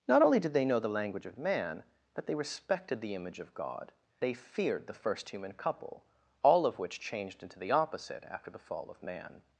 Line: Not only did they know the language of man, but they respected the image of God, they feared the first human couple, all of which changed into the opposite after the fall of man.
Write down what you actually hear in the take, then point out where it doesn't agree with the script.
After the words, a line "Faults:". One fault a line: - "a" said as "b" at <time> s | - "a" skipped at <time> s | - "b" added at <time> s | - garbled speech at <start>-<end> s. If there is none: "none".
Not only did they know the language of man, but they respected the image of God, they feared the first human couple, all of which changed into the opposite after the fall of man.
Faults:
none